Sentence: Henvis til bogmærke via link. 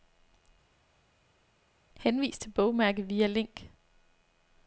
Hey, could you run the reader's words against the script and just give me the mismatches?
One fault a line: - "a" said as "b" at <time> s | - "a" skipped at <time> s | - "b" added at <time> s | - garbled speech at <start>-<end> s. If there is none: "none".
none